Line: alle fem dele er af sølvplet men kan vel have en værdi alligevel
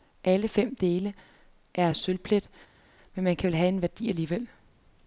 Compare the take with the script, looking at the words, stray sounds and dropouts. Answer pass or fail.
pass